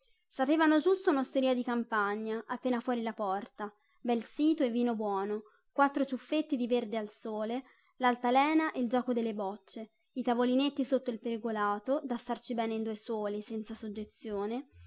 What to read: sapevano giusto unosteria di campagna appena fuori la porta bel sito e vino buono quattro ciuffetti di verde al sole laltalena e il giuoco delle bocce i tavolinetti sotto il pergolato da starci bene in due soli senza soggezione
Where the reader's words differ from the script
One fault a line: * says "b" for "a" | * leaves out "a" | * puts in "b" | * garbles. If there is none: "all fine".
all fine